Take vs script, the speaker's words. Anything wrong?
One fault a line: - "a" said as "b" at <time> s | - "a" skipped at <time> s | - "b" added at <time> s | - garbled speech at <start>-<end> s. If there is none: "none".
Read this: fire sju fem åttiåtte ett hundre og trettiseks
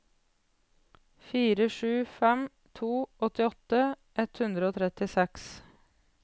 - "to" added at 2.7 s